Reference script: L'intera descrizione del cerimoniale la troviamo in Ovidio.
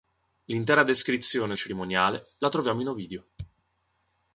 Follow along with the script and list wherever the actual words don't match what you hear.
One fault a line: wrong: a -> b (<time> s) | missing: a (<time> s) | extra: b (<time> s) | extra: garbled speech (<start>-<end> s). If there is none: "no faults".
missing: del (1.5 s)